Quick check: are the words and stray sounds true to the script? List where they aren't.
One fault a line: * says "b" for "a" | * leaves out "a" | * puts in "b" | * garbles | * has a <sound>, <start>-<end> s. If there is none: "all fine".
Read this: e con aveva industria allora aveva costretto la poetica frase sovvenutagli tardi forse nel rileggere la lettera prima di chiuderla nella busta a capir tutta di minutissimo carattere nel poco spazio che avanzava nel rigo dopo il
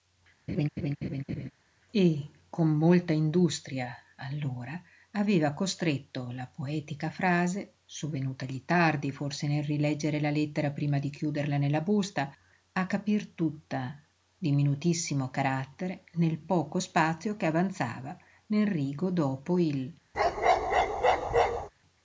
* has a laugh, 0.5-1.5 s
* says "molta" for "aveva"
* has a bark, 20.1-21.7 s